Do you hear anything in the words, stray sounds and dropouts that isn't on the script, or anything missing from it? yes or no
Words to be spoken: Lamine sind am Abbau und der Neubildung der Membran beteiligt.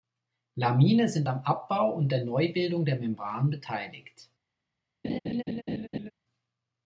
yes